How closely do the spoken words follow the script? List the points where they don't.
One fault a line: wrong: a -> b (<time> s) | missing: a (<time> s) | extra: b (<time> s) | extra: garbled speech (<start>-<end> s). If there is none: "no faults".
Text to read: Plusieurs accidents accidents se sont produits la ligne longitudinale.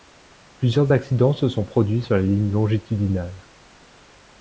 missing: accidents (1.3 s)
extra: sur (2.0 s)